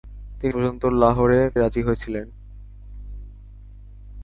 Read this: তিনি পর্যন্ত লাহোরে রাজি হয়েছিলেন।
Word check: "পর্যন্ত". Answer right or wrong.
right